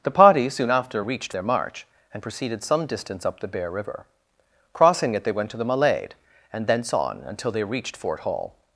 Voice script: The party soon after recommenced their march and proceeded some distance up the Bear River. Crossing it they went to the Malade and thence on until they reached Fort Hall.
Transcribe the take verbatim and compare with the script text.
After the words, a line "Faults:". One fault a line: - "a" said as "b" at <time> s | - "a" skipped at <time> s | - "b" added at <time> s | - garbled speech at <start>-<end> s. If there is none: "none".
The party soon after reached their march and proceeded some distance up the Bear River. Crossing it they went to the Malade and thence on until they reached Fort Hall.
Faults:
- "recommenced" said as "reached" at 1.0 s